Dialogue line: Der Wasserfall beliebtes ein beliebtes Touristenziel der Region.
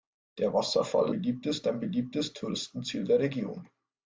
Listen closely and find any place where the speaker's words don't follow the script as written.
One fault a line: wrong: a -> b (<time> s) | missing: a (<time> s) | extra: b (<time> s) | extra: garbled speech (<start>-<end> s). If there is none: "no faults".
no faults